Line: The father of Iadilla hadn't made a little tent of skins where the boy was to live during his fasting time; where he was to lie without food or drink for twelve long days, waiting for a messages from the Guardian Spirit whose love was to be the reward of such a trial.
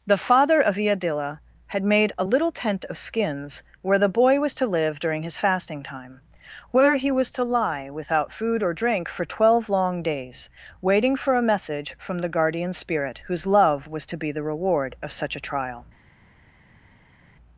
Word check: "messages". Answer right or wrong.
wrong